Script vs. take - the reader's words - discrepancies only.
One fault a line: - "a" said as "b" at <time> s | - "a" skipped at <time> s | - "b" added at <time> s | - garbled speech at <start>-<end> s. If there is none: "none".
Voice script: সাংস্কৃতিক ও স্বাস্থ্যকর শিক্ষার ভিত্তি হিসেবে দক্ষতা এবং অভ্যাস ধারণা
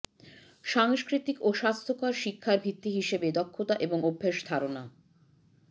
none